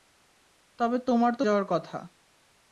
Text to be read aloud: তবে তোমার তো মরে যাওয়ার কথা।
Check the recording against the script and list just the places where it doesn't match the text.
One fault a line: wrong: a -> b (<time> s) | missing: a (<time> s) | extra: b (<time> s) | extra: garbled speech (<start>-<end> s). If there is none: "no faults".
missing: মরে (1.4 s)